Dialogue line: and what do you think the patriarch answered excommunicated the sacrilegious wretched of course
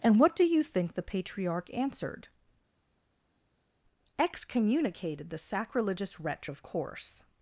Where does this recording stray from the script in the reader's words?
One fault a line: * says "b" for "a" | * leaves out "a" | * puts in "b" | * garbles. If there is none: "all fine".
* says "wretch" for "wretched"